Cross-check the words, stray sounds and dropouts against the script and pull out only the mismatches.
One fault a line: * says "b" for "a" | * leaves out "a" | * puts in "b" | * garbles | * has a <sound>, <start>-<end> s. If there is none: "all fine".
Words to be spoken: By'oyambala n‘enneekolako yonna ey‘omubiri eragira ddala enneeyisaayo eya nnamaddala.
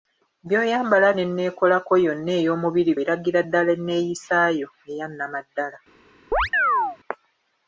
* has a chirp, 6.3-7.0 s